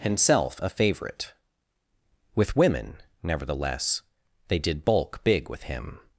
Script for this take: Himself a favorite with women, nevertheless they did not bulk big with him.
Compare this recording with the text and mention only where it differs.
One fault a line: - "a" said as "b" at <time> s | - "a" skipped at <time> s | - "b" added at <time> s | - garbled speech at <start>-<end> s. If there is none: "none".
- "not" skipped at 4.9 s